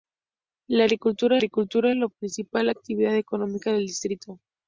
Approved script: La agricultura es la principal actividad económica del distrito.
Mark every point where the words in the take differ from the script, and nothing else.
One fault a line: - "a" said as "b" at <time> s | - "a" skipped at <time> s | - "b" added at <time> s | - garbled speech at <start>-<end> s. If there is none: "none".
- "agricultura" added at 1.4 s